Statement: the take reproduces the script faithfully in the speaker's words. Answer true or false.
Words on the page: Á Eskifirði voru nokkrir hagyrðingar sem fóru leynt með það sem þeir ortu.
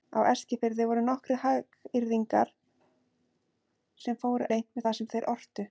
true